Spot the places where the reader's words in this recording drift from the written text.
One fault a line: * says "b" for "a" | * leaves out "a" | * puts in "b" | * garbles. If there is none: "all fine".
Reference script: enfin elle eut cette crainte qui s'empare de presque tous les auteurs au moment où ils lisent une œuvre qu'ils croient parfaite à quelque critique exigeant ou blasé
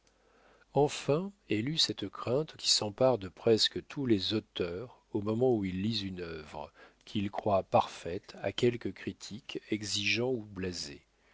all fine